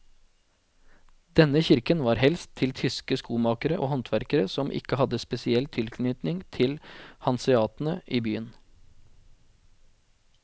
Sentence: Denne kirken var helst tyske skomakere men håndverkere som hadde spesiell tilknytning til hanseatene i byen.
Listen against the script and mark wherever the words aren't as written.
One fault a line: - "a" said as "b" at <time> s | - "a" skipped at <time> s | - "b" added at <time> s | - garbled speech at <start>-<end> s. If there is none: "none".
- "til" added at 2.6 s
- "men" said as "og" at 3.7 s
- "ikke" added at 4.8 s